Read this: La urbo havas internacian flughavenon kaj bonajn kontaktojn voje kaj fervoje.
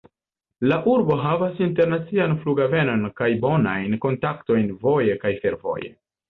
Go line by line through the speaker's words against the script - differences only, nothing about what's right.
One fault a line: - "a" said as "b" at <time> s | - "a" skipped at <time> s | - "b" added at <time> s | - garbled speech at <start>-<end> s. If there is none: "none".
none